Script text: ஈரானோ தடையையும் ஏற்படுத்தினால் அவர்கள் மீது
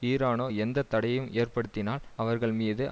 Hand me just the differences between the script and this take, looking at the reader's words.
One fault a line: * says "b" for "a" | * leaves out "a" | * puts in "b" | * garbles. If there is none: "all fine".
* puts in "எந்த"